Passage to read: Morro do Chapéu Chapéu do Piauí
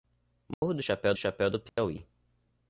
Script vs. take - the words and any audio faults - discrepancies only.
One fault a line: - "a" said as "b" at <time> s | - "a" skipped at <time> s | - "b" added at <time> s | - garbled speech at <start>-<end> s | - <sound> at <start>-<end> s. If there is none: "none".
- dropout at 0.5-0.6 s
- dropout at 1.7-1.8 s